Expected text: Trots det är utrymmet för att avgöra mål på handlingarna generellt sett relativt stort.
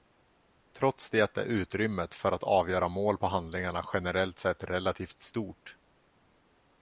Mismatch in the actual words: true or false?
false